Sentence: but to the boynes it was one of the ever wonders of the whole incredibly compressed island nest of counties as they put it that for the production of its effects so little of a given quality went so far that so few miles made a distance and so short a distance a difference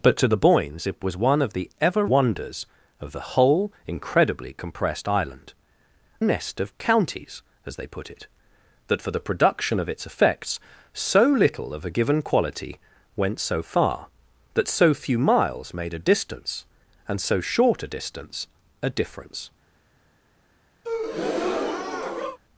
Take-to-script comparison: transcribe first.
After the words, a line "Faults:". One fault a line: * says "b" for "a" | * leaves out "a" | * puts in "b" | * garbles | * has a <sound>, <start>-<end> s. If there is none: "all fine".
but to the boynes it was one of the ever wonders of the whole incredibly compressed island nest of counties as they put it that for the production of its effects so little of a given quality went so far that so few miles made a distance and so short a distance a difference
Faults:
* has a breath, 20.8-22.4 s